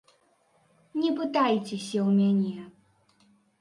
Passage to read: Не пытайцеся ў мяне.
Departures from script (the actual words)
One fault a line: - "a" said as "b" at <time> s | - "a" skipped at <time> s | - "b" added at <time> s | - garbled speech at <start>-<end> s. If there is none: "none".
none